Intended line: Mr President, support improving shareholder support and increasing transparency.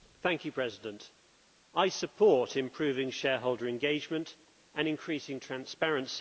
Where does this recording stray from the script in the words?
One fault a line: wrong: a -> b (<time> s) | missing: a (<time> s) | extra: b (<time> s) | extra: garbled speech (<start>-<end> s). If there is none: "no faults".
extra: I (1.8 s)
wrong: support -> engagement (3.7 s)